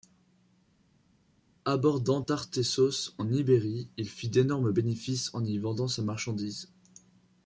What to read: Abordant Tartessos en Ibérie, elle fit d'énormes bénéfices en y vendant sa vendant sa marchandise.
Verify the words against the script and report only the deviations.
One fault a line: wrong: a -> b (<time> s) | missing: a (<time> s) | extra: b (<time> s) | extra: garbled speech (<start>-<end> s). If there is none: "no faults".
wrong: elle -> il (4.0 s)
missing: vendant sa (6.0 s)